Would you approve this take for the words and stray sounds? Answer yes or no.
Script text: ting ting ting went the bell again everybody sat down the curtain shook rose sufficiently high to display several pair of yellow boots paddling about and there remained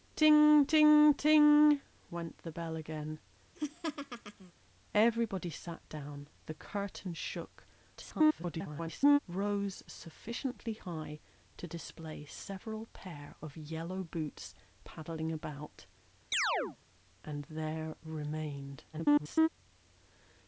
no